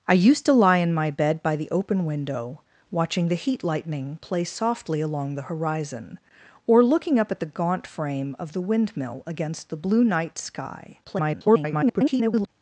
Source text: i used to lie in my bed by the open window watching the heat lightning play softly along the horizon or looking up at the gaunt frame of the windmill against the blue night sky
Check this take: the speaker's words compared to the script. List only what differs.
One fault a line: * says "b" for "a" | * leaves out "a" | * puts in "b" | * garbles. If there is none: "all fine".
* garbles